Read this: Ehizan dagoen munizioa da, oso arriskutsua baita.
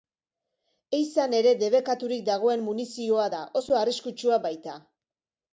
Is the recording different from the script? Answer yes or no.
yes